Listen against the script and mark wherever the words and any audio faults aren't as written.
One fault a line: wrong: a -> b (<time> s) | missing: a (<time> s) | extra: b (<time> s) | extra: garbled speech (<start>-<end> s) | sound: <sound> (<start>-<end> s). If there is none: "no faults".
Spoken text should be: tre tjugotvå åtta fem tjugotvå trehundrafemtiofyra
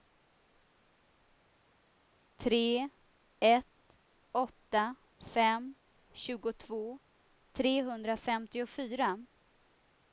wrong: tjugotvå -> ett (3.4 s)